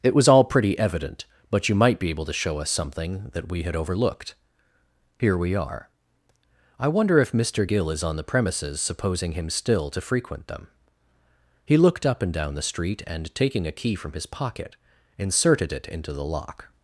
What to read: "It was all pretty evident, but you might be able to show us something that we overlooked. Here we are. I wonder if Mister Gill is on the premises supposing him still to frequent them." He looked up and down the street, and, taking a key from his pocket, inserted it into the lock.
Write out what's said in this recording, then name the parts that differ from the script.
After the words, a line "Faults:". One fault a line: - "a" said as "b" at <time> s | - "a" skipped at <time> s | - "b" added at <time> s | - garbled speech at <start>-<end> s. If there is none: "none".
"It was all pretty evident, but you might be able to show us something that we had overlooked. Here we are. I wonder if Mister Gill is on the premises supposing him still to frequent them." He looked up and down the street, and, taking a key from his pocket, inserted it into the lock.
Faults:
- "had" added at 3.6 s